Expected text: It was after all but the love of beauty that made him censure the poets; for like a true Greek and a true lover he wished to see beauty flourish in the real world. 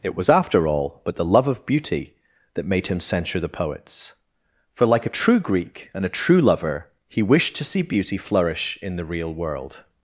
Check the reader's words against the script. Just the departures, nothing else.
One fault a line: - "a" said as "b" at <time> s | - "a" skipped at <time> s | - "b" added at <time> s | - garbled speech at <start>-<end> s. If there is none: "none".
none